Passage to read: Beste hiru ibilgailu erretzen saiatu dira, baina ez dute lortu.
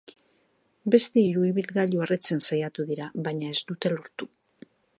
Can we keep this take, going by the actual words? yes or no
yes